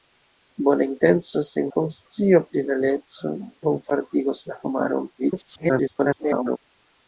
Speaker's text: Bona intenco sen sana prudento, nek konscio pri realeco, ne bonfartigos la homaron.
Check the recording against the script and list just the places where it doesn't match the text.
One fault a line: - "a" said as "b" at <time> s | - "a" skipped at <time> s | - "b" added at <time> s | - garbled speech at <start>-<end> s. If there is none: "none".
- "sana prudento nek" skipped at 1.7 s
- "ne" skipped at 3.4 s
- garbled speech at 5.2-6.6 s